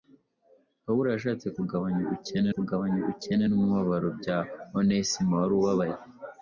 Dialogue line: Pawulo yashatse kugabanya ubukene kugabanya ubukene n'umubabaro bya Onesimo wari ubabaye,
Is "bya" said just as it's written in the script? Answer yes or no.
yes